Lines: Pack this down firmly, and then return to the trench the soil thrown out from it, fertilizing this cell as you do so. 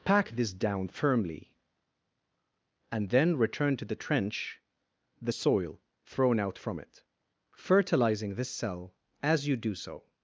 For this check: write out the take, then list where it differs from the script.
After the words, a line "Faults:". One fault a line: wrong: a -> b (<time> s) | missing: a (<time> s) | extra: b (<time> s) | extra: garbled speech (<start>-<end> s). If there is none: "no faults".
Pack this down firmly, and then return to the trench the soil thrown out from it, fertilizing this cell as you do so.
Faults:
no faults